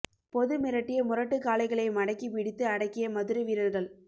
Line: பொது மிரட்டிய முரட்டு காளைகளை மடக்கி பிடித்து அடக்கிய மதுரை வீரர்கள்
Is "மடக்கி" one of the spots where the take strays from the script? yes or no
no